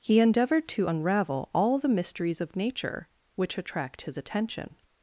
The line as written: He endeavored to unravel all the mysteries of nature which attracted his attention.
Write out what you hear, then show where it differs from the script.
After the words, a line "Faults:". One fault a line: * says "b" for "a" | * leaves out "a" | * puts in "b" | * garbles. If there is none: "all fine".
He endeavored to unravel all the mysteries of nature which attract his attention.
Faults:
* says "attract" for "attracted"